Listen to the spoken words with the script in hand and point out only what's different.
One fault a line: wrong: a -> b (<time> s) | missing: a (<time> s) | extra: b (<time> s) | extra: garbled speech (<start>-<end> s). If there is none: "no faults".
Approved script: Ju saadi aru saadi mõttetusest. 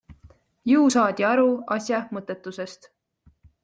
wrong: saadi -> asja (1.8 s)